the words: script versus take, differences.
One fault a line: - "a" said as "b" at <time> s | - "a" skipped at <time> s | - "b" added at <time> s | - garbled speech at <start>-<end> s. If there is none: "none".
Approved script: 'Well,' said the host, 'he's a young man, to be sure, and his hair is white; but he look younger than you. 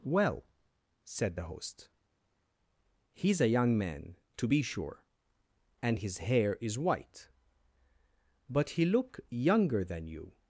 none